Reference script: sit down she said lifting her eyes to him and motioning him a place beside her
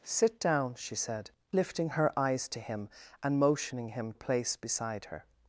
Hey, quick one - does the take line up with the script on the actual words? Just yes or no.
yes